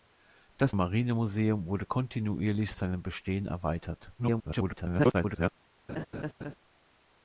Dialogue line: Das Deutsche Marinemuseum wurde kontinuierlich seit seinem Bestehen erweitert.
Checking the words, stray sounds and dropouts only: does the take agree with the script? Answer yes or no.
no